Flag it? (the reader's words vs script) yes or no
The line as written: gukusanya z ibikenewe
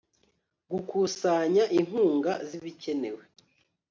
yes